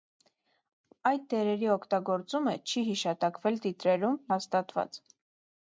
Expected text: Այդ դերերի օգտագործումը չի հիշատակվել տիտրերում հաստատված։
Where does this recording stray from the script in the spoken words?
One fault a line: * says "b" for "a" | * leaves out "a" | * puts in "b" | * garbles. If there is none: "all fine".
all fine